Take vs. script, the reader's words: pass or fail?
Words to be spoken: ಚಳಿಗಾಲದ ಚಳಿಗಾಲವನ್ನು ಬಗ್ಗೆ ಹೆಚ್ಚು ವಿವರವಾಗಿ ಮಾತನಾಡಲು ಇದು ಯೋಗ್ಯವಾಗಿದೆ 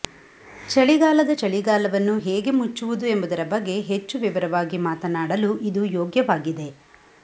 fail